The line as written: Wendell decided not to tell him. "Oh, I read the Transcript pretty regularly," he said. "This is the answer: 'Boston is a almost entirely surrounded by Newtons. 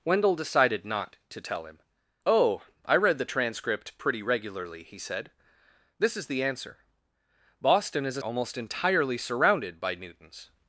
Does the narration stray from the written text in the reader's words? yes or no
no